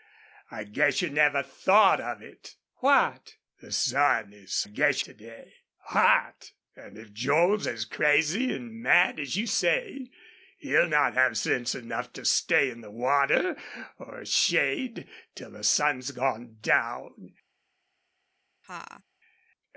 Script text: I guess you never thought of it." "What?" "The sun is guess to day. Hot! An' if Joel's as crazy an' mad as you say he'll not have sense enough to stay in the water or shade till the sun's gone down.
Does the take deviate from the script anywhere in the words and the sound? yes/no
yes